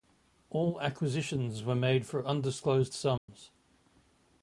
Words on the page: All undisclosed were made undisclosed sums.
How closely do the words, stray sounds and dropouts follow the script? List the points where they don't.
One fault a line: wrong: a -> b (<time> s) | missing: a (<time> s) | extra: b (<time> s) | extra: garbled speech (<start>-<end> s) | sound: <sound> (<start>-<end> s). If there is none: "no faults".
wrong: undisclosed -> acquisitions (0.8 s)
extra: for (2.1 s)
sound: dropout (3.2-3.3 s)